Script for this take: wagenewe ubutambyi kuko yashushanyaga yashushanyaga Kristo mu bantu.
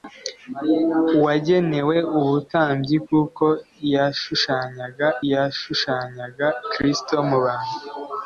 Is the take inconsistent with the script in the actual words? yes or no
no